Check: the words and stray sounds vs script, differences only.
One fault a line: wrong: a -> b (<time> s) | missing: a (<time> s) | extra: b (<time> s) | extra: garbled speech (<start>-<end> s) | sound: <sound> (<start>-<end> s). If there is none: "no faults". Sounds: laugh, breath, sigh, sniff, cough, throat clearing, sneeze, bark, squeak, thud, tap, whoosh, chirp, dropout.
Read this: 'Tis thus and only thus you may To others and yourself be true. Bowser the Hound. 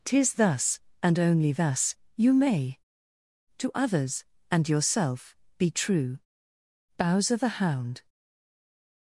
no faults